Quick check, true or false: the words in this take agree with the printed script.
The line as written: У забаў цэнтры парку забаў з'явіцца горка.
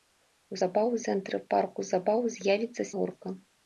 true